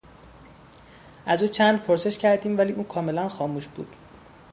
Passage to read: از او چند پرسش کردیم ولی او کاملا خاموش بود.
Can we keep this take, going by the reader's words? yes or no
yes